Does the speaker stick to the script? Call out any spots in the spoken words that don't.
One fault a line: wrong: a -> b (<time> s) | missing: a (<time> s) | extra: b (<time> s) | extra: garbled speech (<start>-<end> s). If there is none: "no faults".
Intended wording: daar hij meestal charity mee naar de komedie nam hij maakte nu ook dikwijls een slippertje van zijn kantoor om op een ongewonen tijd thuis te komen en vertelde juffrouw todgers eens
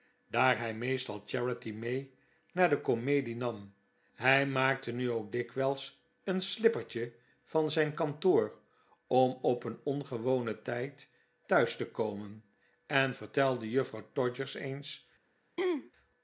no faults